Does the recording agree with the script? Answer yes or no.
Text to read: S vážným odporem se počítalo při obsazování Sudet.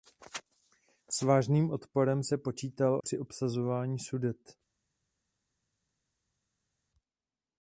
yes